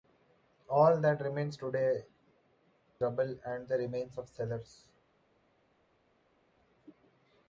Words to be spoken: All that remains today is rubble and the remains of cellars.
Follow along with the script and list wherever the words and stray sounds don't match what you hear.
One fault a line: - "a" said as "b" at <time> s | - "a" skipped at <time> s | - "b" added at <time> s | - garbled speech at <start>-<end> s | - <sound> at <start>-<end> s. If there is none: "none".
- "is" skipped at 2.0 s